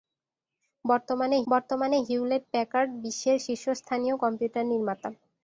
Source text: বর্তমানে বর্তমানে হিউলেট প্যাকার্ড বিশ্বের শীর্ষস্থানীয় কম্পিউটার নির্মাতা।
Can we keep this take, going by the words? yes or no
yes